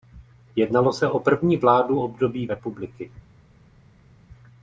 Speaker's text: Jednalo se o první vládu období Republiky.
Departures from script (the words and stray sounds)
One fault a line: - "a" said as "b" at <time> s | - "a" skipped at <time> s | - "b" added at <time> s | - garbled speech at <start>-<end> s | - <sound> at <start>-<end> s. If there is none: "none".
none